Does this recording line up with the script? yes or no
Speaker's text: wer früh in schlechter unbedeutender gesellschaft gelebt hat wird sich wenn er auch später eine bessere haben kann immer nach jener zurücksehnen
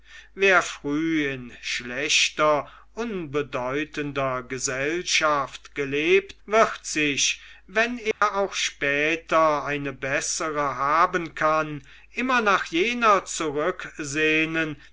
no